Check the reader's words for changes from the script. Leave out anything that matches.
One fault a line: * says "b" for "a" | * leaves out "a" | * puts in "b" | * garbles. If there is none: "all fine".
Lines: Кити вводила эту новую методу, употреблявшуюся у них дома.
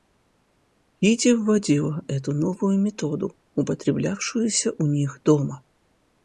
all fine